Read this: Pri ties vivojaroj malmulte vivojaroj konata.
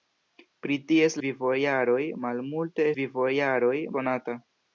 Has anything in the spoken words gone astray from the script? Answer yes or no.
no